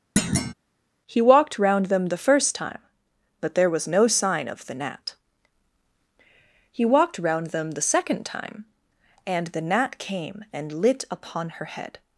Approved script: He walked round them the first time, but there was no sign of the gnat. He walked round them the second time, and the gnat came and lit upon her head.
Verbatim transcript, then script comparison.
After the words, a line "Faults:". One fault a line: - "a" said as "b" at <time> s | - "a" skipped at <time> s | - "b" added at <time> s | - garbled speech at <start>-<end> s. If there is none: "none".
He walked round them the first time, but there was no sign of the gnat. He walked round them the second time, and the gnat came and lit upon her head.
Faults:
none